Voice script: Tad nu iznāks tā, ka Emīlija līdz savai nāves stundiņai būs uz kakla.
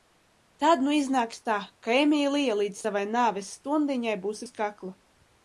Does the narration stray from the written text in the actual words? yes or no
no